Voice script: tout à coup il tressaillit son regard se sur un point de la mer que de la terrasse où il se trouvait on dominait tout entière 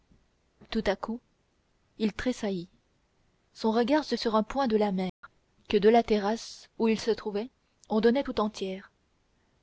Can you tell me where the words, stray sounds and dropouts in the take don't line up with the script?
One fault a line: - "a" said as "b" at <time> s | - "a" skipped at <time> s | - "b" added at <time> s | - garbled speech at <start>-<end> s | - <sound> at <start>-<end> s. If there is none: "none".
- dropout at 5.1-5.2 s